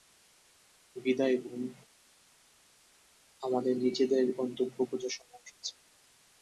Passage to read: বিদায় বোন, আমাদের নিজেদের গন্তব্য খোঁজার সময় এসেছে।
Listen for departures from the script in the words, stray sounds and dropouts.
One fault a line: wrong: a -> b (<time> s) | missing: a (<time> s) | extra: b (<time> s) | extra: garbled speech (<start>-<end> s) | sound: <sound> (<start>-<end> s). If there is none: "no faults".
no faults